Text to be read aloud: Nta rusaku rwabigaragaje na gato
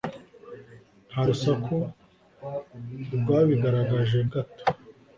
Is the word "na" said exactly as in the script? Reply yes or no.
no